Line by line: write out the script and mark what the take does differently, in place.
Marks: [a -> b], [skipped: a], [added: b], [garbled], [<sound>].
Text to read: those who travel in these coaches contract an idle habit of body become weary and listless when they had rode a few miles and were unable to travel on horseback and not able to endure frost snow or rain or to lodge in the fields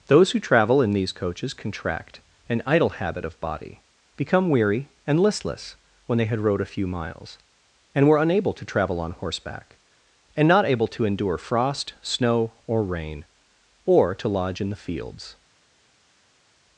those who travel in these coaches contract an idle habit of body become weary and listless when they had rode a few miles and were unable to travel on horseback and not able to endure frost snow or rain or to lodge in the fields